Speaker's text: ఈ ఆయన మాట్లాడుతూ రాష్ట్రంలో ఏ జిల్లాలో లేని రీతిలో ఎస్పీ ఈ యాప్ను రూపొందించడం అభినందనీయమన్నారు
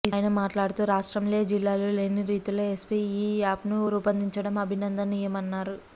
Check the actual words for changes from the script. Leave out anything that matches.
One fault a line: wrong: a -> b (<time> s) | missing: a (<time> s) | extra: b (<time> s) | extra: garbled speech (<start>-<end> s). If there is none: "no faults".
no faults